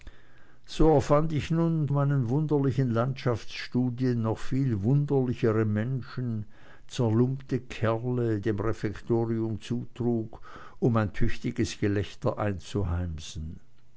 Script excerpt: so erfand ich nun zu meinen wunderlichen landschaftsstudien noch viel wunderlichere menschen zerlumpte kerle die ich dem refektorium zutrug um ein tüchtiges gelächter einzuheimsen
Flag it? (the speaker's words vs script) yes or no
yes